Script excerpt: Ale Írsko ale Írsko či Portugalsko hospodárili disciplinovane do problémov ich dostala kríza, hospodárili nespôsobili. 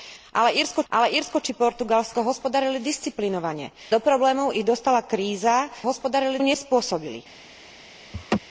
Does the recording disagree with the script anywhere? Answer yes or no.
no